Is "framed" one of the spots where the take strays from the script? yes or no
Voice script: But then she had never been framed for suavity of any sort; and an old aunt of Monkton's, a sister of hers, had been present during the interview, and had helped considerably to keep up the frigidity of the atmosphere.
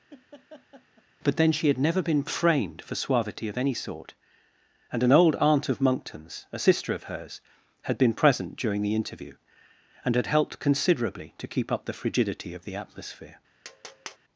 no